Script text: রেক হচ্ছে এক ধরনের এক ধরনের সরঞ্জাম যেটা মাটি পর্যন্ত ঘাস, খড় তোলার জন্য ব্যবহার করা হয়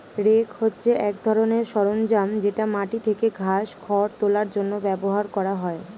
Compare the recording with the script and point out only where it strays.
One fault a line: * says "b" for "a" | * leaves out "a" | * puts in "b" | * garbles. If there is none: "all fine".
* leaves out "এক ধরনের"
* says "থেকে" for "পর্যন্ত"